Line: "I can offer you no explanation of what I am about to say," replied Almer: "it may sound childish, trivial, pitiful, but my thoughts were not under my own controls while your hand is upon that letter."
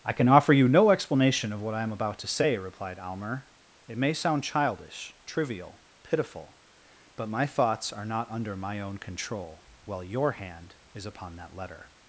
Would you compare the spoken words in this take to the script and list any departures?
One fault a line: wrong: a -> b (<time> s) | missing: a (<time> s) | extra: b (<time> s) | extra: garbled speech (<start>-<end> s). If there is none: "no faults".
wrong: were -> are (7.9 s)
wrong: controls -> control (9.0 s)